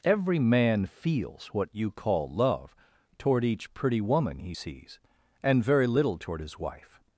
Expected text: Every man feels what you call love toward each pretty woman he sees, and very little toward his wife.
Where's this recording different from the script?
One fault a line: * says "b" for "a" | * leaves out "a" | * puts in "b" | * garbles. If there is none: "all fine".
all fine